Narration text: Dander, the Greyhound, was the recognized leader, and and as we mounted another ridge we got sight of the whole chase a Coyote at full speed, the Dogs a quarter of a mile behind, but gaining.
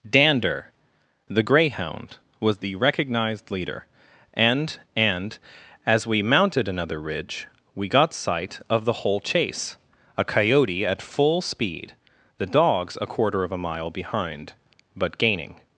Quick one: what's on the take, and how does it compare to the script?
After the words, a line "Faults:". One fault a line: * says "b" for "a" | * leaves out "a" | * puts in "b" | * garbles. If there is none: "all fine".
Dander, the Greyhound, was the recognized leader, and and as we mounted another ridge we got sight of the whole chase a Coyote at full speed, the Dogs a quarter of a mile behind, but gaining.
Faults:
all fine